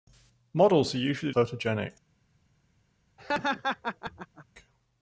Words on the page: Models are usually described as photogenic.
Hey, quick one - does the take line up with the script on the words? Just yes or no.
no